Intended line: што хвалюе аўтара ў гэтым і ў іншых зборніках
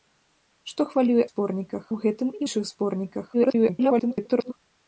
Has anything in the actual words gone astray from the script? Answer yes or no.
yes